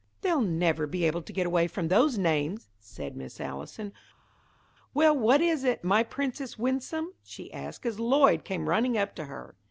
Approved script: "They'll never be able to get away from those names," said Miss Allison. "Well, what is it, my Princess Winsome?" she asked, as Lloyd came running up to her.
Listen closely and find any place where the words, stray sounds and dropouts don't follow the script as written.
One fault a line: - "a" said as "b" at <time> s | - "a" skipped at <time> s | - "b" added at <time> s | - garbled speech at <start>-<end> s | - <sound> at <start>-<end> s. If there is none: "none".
none